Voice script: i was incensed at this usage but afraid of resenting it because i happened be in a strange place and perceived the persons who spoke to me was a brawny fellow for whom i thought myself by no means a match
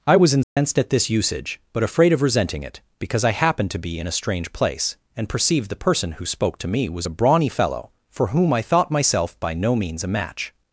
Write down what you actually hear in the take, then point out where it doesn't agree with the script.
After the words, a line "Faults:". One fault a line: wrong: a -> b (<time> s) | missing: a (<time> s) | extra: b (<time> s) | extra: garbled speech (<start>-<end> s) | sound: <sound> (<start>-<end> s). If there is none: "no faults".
i was incensed at this usage but afraid of resenting it because i happened to be in a strange place and perceived the person who spoke to me was a brawny fellow for whom i thought myself by no means a match
Faults:
sound: dropout (0.4-0.6 s)
extra: to (3.7 s)
wrong: persons -> person (5.8 s)